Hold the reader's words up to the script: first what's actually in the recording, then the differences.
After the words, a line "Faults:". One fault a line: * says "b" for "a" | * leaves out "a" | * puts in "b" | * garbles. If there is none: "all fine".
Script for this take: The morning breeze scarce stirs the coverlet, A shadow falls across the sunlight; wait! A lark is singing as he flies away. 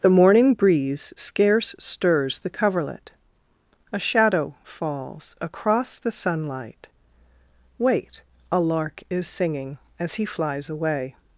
The morning breeze scarce stirs the coverlet, A shadow falls across the sunlight; wait! A lark is singing as he flies away.
Faults:
all fine